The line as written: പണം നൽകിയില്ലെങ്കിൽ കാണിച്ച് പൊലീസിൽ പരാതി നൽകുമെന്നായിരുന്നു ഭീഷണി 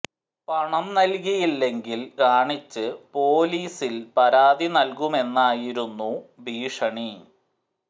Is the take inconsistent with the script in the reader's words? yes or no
no